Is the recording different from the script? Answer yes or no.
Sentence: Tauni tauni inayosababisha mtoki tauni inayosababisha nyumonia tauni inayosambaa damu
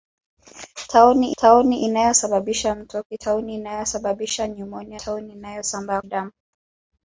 no